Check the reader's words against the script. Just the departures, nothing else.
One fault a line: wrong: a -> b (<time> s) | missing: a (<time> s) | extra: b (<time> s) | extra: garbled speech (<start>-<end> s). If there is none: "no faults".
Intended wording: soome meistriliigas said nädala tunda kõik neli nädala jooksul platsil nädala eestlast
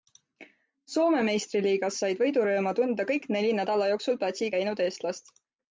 wrong: nädala -> võidurõõmu (2.2 s)
wrong: nädala -> käinud (4.6 s)